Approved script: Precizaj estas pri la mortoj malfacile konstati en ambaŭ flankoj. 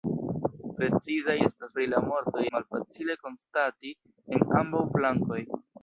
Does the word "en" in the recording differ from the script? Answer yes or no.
no